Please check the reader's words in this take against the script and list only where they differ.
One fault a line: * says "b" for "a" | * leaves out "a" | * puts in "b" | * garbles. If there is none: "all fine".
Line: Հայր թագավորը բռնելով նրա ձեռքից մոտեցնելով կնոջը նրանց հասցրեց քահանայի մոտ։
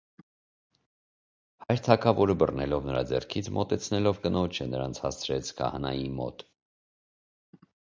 all fine